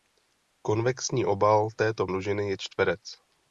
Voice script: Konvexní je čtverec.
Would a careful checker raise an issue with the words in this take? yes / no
yes